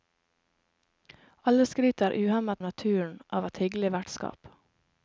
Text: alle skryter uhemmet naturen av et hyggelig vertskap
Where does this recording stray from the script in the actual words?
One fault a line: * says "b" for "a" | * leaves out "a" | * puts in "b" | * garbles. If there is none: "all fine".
all fine